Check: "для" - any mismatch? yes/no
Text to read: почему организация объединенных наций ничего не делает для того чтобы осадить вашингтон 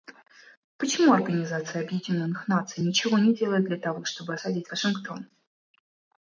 no